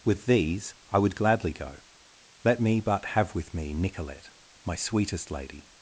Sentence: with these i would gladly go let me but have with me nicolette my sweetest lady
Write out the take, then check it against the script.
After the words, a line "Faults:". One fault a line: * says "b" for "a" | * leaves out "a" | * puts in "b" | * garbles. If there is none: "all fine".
with these i would gladly go let me but have with me nicolette my sweetest lady
Faults:
all fine